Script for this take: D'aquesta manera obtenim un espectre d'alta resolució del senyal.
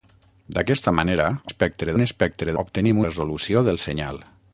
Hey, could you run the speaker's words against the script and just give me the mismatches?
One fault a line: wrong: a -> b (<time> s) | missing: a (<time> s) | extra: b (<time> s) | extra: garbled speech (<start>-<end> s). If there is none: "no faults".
wrong: obtenim -> espectre (1.5 s)
wrong: d'alta -> obtenim (2.6 s)